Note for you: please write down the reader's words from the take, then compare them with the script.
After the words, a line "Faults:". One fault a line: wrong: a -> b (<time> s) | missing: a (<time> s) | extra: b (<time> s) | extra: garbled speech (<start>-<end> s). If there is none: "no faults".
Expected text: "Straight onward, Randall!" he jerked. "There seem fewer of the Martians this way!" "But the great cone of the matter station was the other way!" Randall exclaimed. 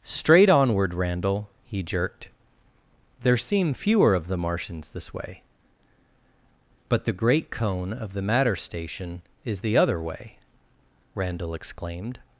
"Straight onward, Randall!" he jerked. "There seem fewer of the Martians this way!" "But the great cone of the matter station is the other way!" Randall exclaimed.
Faults:
wrong: was -> is (9.4 s)